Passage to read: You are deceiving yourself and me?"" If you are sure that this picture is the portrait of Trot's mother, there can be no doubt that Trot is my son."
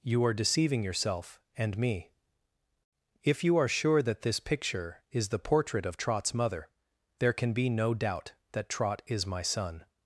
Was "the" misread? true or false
false